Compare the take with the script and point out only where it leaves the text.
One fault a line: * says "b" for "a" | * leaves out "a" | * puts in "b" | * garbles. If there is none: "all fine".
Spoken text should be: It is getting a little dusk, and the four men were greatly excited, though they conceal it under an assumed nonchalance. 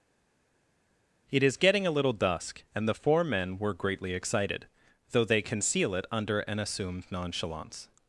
all fine